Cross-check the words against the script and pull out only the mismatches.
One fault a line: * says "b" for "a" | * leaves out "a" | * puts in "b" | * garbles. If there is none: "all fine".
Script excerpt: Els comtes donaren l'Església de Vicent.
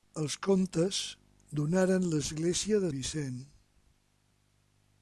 all fine